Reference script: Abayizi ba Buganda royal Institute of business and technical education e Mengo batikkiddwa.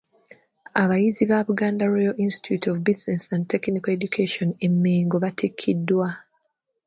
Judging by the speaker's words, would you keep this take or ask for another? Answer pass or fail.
pass